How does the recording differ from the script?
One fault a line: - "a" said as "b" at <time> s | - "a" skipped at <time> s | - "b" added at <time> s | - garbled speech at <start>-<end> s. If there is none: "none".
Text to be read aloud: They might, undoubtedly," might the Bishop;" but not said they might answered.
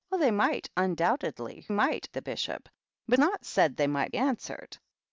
none